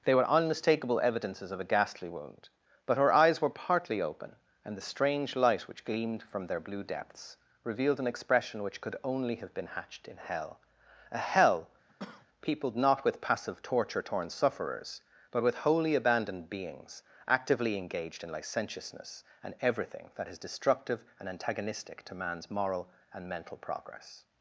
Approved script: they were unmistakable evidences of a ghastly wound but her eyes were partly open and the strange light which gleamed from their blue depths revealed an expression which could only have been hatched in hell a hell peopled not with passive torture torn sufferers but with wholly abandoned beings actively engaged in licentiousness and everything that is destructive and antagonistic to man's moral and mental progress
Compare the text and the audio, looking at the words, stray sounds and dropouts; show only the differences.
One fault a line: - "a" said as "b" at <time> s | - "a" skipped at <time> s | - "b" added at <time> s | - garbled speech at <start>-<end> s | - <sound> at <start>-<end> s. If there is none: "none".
- cough at 11.9-12.3 s